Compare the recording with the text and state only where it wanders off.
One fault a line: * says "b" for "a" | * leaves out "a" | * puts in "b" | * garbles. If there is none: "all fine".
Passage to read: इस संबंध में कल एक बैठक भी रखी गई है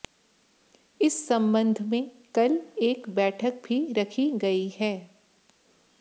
all fine